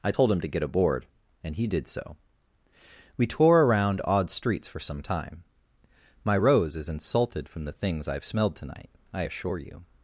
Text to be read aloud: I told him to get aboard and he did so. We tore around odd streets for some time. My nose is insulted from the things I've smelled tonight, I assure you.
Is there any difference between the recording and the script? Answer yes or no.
yes